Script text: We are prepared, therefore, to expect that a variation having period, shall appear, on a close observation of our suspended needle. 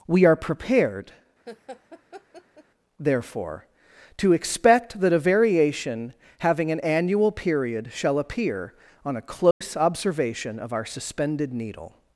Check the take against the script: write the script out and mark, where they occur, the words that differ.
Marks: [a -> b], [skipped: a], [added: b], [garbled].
We are prepared, therefore, to expect that a variation having [added: an annual] period, shall appear, on a close observation of our suspended needle.